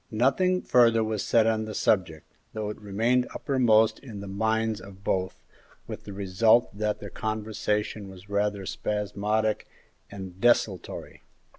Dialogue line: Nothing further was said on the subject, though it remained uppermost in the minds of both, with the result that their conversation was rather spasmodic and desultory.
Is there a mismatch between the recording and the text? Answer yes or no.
no